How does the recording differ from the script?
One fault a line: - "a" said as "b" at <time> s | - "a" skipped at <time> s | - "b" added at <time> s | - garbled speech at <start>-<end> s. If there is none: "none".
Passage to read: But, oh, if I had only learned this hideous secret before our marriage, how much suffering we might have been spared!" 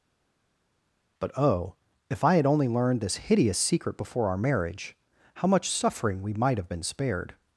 none